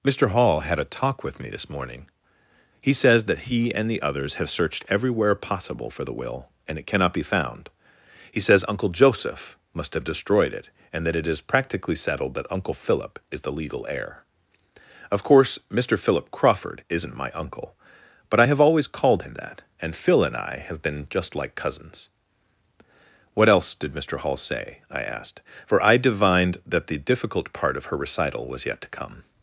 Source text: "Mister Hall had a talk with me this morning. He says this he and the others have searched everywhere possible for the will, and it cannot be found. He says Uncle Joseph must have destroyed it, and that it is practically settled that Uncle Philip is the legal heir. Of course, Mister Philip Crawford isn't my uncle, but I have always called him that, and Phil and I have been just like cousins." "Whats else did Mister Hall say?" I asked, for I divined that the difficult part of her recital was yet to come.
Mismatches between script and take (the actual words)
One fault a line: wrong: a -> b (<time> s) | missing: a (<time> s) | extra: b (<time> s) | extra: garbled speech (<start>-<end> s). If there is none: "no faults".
wrong: this -> that (3.2 s)
wrong: Whats -> What (23.3 s)